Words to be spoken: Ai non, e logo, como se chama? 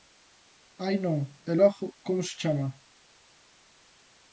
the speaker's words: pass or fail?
pass